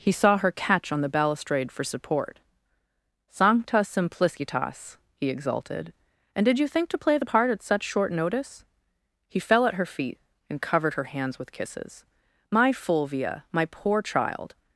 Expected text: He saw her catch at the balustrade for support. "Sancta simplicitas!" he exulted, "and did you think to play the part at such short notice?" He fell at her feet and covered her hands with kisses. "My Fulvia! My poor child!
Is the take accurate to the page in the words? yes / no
no